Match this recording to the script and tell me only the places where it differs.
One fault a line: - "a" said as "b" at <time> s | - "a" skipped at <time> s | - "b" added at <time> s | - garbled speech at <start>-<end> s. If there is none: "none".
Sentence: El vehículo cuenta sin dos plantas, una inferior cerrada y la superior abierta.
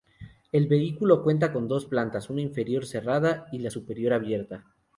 - "sin" said as "con" at 1.5 s